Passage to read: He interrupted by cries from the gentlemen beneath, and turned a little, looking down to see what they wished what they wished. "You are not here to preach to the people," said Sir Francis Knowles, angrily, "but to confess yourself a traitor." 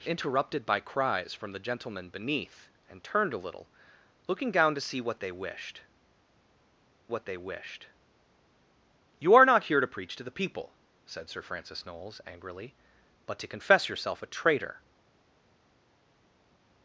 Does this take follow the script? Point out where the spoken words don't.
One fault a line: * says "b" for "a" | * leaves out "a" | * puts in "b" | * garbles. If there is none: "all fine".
all fine